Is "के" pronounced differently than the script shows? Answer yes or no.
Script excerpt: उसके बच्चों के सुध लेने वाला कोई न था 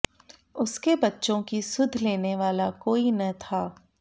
yes